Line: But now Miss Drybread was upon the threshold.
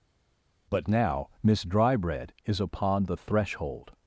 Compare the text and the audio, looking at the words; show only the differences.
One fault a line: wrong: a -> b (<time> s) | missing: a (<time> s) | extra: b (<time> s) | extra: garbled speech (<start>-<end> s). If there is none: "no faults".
wrong: was -> is (2.5 s)